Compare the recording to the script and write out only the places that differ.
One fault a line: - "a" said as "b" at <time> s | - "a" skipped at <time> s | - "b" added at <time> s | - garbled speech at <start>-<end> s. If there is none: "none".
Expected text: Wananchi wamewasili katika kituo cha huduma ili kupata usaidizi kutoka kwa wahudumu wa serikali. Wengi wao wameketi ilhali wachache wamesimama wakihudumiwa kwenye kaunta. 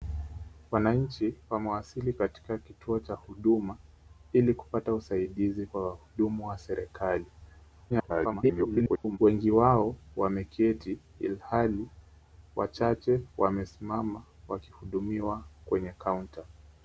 - "kutoka" skipped at 5.7 s
- garbled speech at 7.9-9.2 s